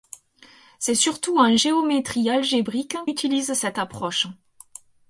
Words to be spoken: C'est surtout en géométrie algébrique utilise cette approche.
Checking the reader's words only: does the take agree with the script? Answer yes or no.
yes